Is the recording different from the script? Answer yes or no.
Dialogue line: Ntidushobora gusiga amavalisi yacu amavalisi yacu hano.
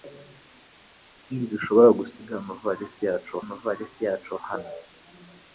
no